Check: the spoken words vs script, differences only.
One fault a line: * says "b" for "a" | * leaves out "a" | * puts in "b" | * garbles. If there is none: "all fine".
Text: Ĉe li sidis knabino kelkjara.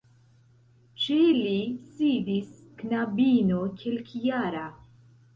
all fine